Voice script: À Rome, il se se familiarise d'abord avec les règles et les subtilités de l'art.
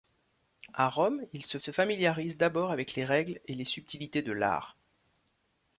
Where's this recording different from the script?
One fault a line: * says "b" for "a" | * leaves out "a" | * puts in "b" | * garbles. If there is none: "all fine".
all fine